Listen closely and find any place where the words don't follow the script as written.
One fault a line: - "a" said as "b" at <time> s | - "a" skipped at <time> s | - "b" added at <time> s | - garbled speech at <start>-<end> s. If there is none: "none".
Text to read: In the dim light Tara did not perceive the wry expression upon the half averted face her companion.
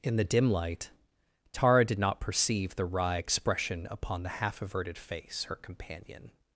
none